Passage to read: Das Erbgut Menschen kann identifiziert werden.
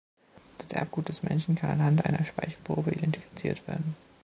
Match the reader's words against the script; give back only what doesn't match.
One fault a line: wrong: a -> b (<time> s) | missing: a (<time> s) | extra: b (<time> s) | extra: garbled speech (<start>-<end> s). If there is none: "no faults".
extra: des (1.1 s)
extra: anhand einer Speichelprobe (1.7 s)